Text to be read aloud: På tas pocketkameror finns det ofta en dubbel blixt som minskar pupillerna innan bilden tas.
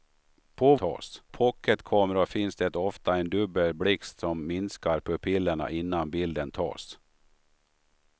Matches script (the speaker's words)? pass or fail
pass